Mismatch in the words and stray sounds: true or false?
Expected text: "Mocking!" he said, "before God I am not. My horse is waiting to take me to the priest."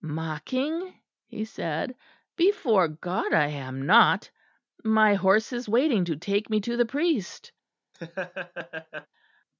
true